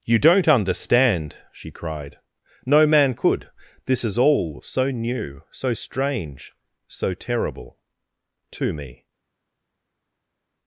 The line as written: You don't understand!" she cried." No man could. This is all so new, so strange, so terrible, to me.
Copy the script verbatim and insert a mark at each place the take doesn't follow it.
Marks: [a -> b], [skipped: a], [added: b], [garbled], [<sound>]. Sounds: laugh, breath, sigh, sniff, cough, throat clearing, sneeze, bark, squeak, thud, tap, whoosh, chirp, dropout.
You don't understand!" she cried." No man could. This is all so new, so strange, so terrible, to me.